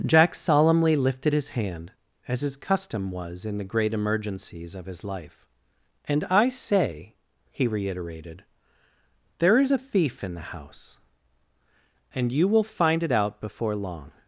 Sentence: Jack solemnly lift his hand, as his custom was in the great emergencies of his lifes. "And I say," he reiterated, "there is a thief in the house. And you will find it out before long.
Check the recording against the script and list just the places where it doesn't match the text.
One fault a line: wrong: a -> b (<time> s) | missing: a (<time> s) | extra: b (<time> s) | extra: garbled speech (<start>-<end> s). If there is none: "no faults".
wrong: lift -> lifted (0.9 s)
wrong: lifes -> life (5.0 s)